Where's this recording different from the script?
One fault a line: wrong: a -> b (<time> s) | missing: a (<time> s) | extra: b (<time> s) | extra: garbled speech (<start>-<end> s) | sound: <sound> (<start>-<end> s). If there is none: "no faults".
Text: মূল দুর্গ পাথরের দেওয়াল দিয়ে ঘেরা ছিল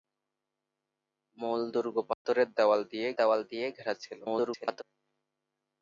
sound: dropout (2.1-2.3 s)
extra: দেওয়াল দিয়ে (3.2 s)
extra: garbled speech (4.2-4.8 s)